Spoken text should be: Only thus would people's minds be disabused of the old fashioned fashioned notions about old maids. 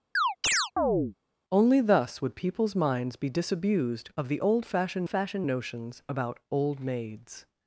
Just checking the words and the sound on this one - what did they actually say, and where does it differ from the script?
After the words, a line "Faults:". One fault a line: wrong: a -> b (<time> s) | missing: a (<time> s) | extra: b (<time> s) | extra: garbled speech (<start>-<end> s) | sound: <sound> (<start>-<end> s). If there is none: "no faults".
Only thus would people's minds be disabused of the old fashioned fashioned notions about old maids.
Faults:
sound: chirp (0.2-1.1 s)